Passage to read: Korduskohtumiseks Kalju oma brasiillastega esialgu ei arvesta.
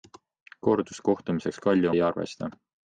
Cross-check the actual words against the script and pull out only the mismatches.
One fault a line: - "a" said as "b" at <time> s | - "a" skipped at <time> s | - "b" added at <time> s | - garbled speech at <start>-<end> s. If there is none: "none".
- "oma brasiillastega esialgu" skipped at 1.9 s